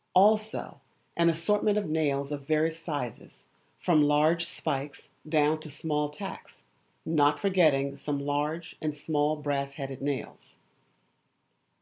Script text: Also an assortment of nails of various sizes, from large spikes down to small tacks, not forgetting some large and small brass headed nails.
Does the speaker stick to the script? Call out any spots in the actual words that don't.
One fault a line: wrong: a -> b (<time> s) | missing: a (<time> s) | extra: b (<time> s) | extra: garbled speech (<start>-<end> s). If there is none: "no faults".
no faults